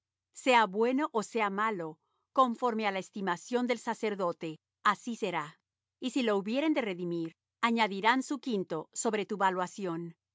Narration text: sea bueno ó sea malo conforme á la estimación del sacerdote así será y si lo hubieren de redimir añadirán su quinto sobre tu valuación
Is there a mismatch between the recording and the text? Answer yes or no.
no